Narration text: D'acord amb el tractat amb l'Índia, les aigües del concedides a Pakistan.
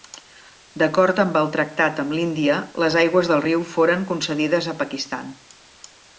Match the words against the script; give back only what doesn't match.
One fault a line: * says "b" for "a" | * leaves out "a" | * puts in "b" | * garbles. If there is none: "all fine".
* puts in "riu foren"